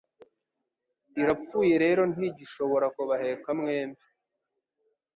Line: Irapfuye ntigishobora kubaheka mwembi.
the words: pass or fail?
fail